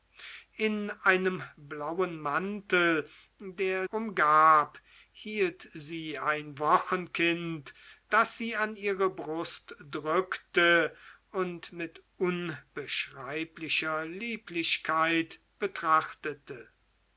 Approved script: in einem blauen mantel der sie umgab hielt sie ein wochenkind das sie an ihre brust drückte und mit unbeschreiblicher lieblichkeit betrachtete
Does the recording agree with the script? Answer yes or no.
no